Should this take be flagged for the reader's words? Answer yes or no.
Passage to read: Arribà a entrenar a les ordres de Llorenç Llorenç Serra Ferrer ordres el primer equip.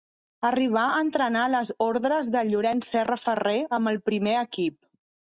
yes